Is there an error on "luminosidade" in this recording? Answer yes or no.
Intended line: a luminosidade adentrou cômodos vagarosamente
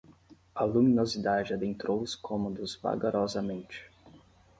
no